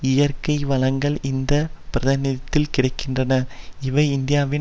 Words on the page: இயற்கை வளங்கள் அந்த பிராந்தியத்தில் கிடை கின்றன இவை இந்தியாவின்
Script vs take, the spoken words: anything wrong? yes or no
yes